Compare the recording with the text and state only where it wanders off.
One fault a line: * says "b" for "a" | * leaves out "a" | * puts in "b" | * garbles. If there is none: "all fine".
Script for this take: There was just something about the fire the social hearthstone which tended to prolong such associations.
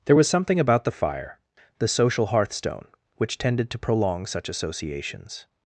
* leaves out "just"